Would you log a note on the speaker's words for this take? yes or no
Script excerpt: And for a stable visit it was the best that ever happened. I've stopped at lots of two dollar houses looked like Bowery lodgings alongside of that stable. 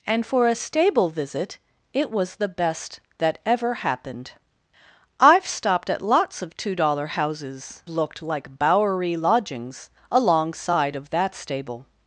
no